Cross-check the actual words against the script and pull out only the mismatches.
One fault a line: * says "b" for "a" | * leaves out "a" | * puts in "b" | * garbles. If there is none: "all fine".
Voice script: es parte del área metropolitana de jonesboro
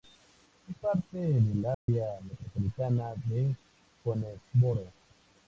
all fine